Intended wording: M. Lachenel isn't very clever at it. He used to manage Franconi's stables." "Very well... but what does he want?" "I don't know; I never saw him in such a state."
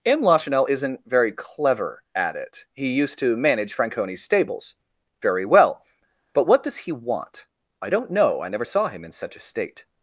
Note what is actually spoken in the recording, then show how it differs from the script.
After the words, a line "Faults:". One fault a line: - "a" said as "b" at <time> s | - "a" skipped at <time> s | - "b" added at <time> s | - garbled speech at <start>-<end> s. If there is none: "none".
M. Lachenel isn't very clever at it. He used to manage Franconi's stables." "Very well... but what does he want?" "I don't know; I never saw him in such a state."
Faults:
none